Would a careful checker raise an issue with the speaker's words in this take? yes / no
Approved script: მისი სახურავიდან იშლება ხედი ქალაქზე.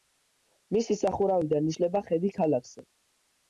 no